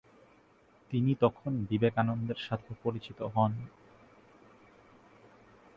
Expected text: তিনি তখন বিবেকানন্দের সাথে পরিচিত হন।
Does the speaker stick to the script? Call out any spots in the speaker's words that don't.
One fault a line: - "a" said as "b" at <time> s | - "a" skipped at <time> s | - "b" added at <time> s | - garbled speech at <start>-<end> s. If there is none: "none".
none